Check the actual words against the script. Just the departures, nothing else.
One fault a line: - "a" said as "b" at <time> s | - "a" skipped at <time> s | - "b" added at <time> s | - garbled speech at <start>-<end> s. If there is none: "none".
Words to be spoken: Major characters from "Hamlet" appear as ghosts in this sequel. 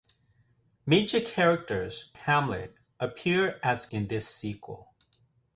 - "from" skipped at 2.1 s
- "ghosts" skipped at 3.9 s